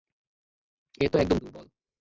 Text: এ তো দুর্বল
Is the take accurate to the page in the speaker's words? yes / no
no